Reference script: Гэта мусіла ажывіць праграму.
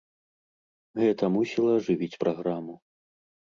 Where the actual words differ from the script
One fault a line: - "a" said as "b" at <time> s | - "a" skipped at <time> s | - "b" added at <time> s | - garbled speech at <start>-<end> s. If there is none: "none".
none